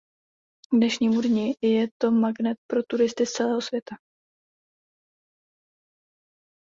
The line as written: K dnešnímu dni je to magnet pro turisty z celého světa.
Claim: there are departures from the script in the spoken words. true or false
false